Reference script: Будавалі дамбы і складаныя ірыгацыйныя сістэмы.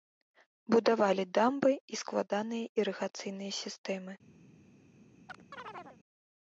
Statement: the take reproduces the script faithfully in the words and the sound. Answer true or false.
false